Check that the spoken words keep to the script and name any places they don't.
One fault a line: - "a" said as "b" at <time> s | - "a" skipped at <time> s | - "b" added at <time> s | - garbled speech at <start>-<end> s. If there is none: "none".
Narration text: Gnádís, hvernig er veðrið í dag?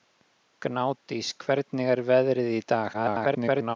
- garbled speech at 2.9-3.8 s